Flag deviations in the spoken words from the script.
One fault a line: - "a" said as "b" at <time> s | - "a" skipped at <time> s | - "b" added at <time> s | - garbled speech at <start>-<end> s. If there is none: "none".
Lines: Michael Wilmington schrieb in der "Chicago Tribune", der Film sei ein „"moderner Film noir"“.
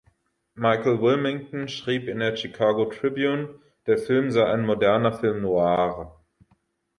none